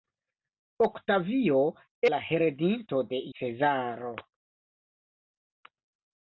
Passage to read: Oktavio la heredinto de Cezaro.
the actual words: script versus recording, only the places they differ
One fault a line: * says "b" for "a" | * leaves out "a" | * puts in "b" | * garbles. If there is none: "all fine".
all fine